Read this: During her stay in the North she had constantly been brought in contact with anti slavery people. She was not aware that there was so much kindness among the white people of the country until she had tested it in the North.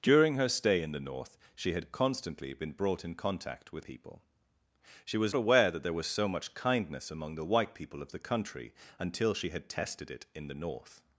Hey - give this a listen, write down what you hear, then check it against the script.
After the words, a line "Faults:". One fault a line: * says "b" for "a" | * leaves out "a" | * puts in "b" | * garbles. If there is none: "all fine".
During her stay in the North she had constantly been brought in contact with people. She was aware that there was so much kindness among the white people of the country until she had tested it in the North.
Faults:
* leaves out "anti slavery"
* leaves out "not"